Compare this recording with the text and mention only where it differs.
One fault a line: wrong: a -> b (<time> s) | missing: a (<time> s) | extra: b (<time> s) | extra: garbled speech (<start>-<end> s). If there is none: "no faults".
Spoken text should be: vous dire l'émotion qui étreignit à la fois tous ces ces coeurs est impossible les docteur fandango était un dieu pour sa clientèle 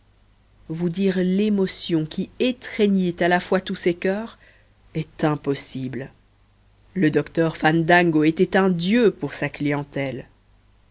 missing: ces (3.9 s)
wrong: les -> le (7.0 s)